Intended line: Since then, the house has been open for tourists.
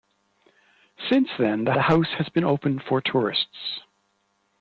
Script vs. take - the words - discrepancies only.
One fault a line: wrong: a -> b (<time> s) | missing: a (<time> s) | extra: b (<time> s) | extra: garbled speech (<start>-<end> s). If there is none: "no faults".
extra: the (1.7 s)